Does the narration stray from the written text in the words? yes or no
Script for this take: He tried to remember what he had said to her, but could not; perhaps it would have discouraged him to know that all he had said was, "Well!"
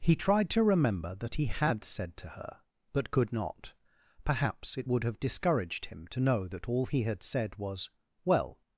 yes